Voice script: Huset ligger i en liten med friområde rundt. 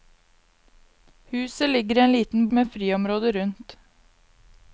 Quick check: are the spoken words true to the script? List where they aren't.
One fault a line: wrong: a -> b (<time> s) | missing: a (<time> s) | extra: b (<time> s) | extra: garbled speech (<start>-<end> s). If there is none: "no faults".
no faults